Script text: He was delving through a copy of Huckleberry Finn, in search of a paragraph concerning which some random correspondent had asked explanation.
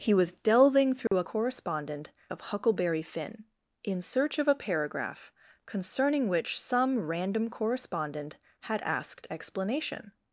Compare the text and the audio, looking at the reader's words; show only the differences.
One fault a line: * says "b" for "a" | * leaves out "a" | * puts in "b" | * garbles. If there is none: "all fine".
* says "correspondent" for "copy"